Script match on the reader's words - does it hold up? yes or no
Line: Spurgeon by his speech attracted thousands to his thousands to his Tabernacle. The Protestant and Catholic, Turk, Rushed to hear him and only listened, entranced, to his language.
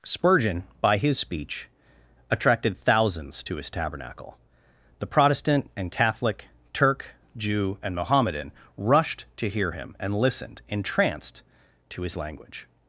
no